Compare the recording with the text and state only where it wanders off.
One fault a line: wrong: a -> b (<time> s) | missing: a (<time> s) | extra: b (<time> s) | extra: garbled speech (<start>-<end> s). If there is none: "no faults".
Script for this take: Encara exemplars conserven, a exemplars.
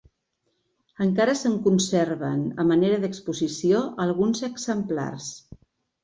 wrong: exemplars -> se'n (1.4 s)
extra: manera d'exposició alguns (2.7 s)